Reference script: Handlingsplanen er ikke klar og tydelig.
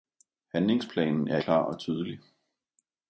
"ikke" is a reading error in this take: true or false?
true